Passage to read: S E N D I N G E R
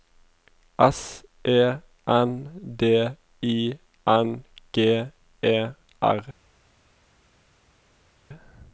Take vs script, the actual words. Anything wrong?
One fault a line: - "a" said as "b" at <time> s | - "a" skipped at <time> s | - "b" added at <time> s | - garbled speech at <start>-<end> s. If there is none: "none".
none